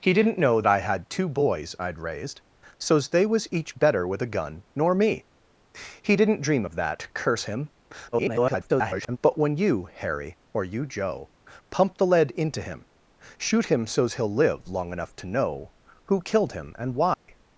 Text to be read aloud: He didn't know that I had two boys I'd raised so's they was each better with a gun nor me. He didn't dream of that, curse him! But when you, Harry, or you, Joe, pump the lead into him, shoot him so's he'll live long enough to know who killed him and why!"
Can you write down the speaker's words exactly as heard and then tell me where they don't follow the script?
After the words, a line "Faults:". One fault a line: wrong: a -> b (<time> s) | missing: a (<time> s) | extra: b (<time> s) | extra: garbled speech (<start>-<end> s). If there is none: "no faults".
He didn't know I had two boys I'd raised so's they was each better with a gun nor me. He didn't dream of that, curse him! [garbled] But when you, Harry, or you, Joe, pump the lead into him, shoot him so's he'll live long enough to know who killed him and why!"
Faults:
missing: that (0.6 s)
extra: garbled speech (8.1-9.2 s)